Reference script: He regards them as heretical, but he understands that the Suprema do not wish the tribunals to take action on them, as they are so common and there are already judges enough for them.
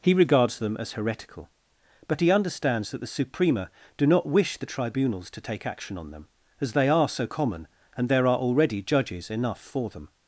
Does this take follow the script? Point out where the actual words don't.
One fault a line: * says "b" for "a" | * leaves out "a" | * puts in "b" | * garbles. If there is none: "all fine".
all fine